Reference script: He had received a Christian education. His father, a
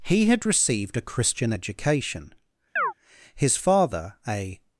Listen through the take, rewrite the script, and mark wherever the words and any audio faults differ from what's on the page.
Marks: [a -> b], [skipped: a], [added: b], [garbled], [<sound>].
He had received a Christian education. [chirp] His father, a